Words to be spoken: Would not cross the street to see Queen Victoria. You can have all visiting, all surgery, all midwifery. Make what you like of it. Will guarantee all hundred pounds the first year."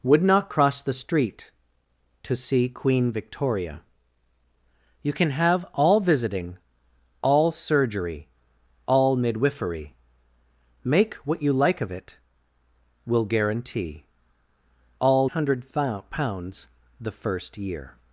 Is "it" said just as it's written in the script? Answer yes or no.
yes